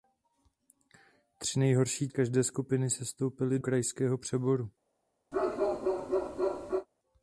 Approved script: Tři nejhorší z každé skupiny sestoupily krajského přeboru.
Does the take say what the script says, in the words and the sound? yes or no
no